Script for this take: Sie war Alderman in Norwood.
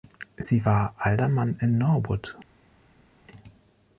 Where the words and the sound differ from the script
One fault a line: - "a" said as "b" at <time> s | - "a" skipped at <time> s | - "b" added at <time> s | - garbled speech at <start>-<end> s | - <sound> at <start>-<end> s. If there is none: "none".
none